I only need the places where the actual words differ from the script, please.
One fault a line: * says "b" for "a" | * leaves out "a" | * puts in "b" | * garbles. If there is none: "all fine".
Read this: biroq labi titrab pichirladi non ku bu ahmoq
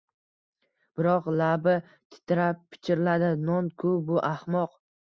all fine